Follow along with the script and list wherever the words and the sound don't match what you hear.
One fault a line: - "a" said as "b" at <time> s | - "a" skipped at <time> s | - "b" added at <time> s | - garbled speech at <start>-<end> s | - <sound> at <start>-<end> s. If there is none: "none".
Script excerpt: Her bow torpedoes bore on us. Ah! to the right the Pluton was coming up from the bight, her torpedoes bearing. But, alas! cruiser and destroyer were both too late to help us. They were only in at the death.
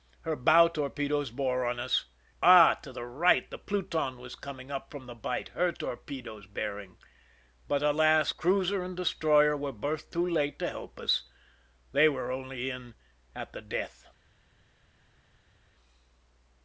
none